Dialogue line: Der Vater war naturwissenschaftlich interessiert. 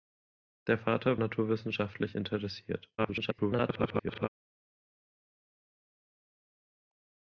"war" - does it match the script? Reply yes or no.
no